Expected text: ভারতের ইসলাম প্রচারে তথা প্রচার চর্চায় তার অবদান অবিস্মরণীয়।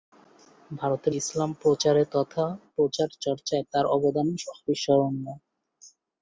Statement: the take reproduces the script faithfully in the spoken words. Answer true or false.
true